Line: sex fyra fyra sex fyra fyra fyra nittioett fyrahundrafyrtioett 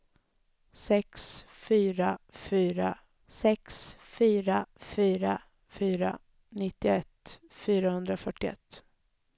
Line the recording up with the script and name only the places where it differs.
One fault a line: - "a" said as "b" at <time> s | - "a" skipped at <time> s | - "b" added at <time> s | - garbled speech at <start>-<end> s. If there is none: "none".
none